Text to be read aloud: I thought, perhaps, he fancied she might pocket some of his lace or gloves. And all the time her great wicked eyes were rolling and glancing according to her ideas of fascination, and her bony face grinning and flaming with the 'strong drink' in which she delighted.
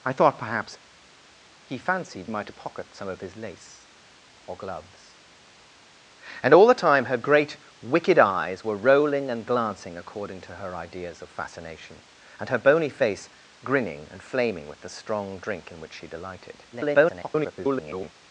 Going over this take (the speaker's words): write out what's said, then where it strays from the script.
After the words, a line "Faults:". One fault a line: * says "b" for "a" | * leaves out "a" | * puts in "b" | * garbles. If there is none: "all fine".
I thought, perhaps, he fancied might pocket some of his lace or gloves. And all the time her great wicked eyes were rolling and glancing according to her ideas of fascination, and her bony face grinning and flaming with the 'strong drink' in which she delighted. [garbled]
Faults:
* leaves out "she"
* garbles